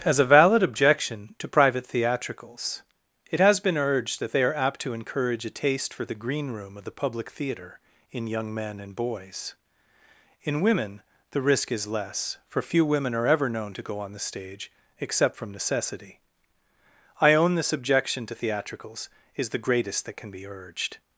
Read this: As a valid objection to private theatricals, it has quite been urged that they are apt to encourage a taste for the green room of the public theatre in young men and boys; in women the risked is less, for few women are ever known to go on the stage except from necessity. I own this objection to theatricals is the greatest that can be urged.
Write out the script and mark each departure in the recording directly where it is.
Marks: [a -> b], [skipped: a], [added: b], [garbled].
As a valid objection to private theatricals, it has [skipped: quite] been urged that they are apt to encourage a taste for the green room of the public theatre in young men and boys; in women the [risked -> risk] is less, for few women are ever known to go on the stage except from necessity. I own this objection to theatricals is the greatest that can be urged.